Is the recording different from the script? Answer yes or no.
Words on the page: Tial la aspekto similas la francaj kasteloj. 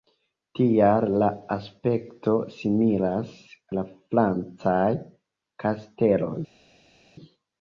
no